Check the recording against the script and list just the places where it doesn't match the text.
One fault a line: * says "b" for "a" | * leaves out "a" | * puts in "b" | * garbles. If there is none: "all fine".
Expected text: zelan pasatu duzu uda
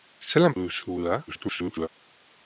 * leaves out "pasatu"
* garbles